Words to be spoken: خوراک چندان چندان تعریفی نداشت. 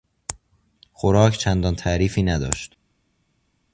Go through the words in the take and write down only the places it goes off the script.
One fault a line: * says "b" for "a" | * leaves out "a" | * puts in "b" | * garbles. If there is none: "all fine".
* leaves out "چندان"